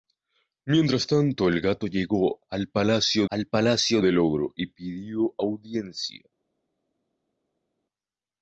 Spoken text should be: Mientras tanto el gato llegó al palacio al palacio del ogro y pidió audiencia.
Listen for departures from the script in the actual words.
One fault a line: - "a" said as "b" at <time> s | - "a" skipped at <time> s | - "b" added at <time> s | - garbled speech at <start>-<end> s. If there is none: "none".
none